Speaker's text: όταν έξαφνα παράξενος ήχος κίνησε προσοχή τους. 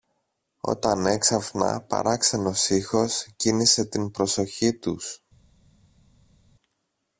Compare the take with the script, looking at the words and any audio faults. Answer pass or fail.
fail